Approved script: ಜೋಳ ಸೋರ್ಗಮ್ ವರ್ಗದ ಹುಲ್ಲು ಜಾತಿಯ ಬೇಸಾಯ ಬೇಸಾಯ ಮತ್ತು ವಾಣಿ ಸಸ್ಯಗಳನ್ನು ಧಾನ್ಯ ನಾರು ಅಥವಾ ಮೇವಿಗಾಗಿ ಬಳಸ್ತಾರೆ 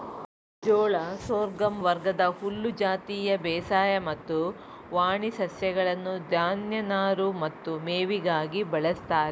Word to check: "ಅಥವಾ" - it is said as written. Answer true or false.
false